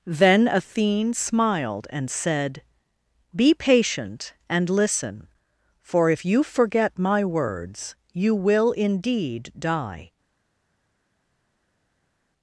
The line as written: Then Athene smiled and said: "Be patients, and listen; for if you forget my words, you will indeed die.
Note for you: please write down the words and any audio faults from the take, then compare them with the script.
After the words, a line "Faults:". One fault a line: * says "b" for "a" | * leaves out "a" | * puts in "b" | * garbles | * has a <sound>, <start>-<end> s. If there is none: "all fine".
Then Athene smiled and said: "Be patient, and listen; for if you forget my words, you will indeed die.
Faults:
* says "patient" for "patients"